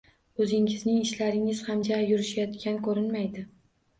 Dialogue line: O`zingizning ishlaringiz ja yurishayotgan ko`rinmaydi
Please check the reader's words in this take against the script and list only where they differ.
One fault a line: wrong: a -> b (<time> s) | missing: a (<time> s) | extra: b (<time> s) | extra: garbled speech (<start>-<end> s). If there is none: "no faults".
extra: ham (1.7 s)